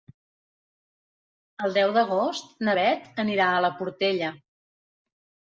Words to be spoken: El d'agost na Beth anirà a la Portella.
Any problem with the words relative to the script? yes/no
yes